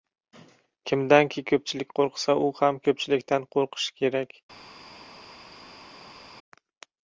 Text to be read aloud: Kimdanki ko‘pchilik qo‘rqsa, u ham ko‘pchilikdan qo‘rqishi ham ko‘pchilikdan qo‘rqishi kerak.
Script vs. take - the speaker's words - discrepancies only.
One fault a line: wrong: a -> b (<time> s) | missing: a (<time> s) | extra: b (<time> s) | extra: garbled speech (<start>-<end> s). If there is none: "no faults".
missing: ham ko‘pchilikdan qo‘rqishi (4.0 s)